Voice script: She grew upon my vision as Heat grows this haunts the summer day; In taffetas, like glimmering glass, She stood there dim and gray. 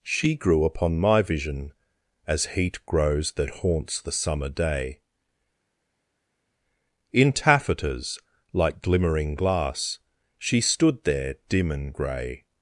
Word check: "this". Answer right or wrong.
wrong